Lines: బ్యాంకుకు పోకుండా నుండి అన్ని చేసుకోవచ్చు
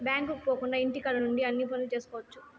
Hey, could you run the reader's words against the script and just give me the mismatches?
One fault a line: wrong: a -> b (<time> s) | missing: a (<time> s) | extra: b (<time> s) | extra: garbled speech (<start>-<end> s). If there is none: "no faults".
extra: ఇంటికాడ (0.8 s)
extra: పనులు (1.6 s)